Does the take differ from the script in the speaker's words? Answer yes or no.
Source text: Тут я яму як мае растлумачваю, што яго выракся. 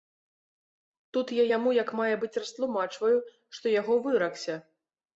yes